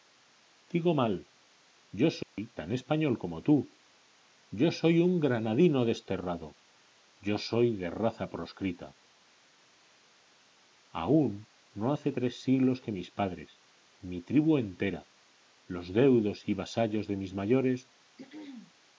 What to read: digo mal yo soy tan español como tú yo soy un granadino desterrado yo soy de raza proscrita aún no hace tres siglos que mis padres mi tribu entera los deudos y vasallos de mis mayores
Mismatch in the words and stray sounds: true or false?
true